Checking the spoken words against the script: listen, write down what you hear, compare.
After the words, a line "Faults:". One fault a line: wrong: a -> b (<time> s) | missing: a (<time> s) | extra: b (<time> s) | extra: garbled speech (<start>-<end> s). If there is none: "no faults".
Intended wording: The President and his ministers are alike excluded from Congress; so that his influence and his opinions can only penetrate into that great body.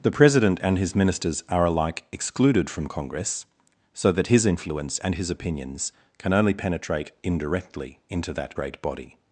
The President and his ministers are alike excluded from Congress; so that his influence and his opinions can only penetrate indirectly into that great body.
Faults:
extra: indirectly (7.2 s)